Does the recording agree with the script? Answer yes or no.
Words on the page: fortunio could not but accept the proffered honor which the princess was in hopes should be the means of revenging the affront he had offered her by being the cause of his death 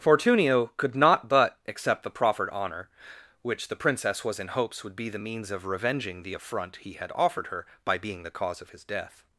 no